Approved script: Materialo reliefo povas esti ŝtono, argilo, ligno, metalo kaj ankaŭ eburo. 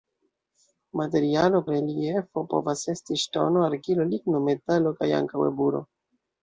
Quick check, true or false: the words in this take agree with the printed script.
true